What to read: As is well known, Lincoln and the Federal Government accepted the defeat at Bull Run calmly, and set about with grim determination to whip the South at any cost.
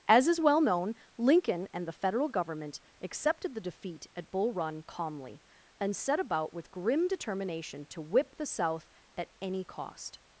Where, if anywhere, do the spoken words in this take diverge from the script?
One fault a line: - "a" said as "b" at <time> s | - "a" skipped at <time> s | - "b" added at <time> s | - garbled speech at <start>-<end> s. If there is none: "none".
none